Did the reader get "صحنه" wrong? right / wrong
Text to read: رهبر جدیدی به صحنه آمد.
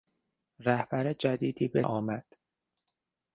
wrong